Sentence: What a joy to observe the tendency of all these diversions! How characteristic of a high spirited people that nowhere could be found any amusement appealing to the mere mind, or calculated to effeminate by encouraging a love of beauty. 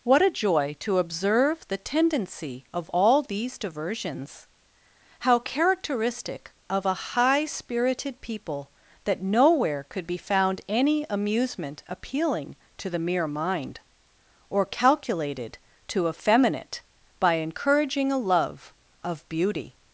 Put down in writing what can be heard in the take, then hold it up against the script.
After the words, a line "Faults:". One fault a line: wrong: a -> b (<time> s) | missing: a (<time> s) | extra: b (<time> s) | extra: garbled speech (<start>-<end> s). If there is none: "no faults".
What a joy to observe the tendency of all these diversions! How characteristic of a high spirited people that nowhere could be found any amusement appealing to the mere mind, or calculated to effeminate by encouraging a love of beauty.
Faults:
no faults